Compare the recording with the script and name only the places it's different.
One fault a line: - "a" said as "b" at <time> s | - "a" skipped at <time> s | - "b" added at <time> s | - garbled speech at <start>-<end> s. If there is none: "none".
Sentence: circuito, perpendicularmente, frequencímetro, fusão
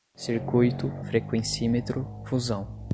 - "perpendicularmente" skipped at 0.9 s